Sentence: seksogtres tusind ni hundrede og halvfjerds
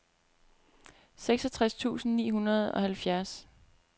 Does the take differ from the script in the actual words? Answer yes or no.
no